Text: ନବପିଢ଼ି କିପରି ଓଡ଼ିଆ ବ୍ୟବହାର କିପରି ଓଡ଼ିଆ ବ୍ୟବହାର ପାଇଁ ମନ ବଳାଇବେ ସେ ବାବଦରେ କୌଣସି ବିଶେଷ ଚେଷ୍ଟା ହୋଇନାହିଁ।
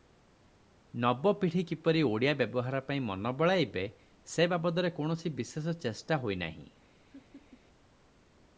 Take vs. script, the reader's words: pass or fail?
fail